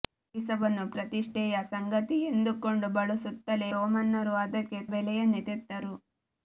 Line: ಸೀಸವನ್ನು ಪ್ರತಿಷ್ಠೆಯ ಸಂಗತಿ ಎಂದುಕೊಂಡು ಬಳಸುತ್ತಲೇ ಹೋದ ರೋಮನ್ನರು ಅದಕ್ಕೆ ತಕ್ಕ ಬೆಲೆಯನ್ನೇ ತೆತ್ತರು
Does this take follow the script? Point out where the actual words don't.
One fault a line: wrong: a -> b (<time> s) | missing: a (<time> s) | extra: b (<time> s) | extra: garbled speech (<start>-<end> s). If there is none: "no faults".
missing: ಹೋದ (3.7 s)
missing: ತಕ್ಕ (4.8 s)